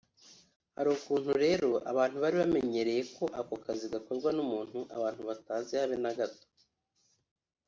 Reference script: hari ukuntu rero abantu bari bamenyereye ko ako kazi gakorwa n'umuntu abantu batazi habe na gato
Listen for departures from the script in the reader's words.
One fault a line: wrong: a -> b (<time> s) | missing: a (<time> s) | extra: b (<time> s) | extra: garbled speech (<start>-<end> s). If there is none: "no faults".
no faults